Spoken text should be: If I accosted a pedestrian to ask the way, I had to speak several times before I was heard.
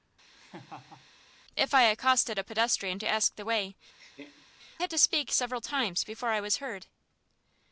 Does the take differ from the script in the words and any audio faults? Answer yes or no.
yes